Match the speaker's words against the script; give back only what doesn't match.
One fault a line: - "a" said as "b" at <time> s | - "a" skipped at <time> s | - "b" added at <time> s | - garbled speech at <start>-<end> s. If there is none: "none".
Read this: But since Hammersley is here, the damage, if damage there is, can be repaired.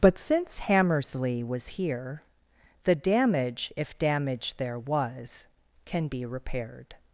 - "is" said as "was" at 1.4 s
- "is" said as "was" at 4.8 s